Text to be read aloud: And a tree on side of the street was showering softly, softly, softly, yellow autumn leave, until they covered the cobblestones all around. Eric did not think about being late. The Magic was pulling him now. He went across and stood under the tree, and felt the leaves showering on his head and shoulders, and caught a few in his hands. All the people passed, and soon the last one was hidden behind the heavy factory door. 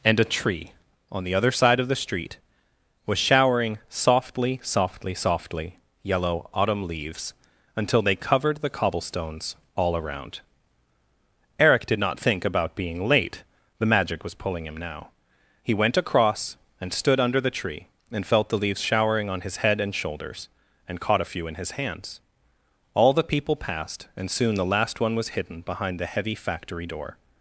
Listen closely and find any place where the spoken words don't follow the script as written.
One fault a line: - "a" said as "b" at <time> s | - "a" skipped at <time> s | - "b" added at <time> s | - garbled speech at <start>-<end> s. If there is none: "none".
- "the other" added at 1.2 s
- "leave" said as "leaves" at 6.9 s